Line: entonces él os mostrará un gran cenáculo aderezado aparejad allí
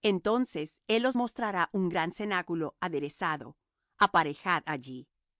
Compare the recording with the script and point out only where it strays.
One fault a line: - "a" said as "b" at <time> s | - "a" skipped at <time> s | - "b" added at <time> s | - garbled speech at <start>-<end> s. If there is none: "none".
none